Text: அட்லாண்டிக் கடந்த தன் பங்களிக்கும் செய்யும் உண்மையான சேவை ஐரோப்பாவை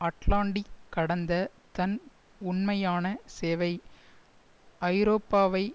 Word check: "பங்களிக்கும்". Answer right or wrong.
wrong